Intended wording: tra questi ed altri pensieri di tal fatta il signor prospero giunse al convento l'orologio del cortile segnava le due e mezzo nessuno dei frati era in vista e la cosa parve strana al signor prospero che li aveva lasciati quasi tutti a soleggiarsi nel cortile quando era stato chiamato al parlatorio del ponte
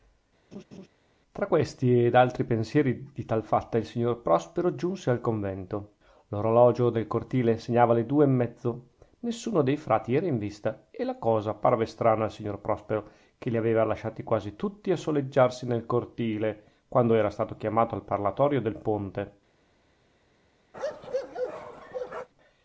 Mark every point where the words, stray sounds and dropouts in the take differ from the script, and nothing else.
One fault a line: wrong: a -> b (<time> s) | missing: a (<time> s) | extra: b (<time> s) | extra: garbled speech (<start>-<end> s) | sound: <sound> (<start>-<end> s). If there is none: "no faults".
sound: laugh (0.5-0.9 s)
sound: bark (20.7-22.3 s)